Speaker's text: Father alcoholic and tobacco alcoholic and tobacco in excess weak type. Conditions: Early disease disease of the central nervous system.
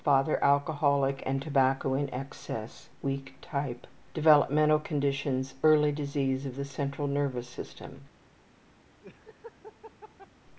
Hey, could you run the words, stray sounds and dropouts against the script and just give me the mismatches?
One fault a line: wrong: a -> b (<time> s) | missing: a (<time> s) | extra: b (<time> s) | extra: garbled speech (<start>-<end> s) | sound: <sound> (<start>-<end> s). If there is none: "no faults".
missing: alcoholic and tobacco (1.9 s)
extra: Developmental (4.2 s)
missing: disease (6.5 s)
sound: laugh (9.0-10.3 s)